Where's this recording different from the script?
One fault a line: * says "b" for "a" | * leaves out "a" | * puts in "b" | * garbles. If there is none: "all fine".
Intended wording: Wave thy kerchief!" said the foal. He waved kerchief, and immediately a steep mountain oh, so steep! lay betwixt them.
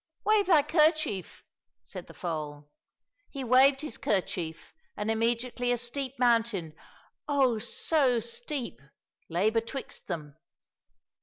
* puts in "his"